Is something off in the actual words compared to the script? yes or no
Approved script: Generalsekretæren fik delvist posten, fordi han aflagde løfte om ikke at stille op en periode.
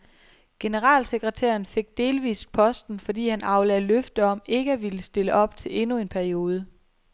yes